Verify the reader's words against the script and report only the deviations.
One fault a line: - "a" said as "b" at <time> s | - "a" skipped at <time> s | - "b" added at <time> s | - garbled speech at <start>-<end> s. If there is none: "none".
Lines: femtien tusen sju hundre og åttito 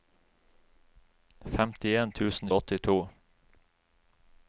- "sju hundre" skipped at 2.5 s